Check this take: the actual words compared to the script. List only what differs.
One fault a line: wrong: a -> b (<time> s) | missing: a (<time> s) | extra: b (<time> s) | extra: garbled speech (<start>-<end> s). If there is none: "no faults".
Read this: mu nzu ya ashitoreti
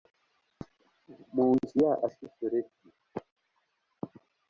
no faults